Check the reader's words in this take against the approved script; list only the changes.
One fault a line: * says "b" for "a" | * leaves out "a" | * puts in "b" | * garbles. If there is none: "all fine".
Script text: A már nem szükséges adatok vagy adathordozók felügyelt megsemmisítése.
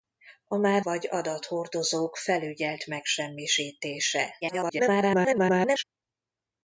* leaves out "nem szükséges adatok"
* garbles